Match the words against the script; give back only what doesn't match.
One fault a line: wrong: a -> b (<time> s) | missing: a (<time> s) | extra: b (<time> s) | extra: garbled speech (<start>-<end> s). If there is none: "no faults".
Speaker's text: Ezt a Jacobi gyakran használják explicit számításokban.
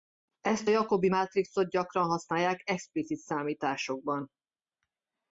extra: mátrixot (1.1 s)